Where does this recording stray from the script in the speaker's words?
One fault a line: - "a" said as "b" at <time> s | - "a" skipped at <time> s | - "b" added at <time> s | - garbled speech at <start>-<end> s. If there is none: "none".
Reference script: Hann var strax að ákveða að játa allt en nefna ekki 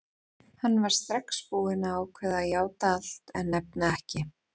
- "búinn" added at 1.5 s